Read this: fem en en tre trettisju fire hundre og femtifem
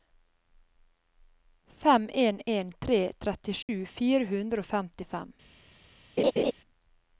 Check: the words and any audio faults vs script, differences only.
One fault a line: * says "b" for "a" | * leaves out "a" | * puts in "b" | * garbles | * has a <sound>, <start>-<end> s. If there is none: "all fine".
* has a dropout, 3.6-3.7 s
* has a laugh, 6.2-6.5 s